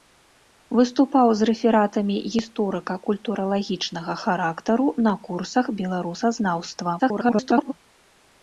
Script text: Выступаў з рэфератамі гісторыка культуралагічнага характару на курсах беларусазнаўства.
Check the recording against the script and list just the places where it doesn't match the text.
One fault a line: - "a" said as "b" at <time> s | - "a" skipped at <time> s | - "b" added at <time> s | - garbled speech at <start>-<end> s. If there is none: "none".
- garbled speech at 7.0-7.7 s